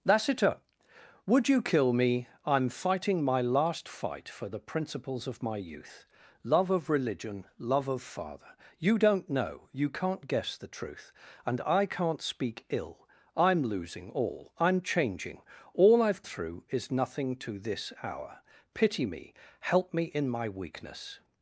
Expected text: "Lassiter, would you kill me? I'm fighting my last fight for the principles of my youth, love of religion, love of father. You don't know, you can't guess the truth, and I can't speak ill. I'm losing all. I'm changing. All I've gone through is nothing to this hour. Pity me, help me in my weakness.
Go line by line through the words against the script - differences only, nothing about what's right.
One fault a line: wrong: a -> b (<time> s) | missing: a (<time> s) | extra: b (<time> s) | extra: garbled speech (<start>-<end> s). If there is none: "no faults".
missing: gone (16.2 s)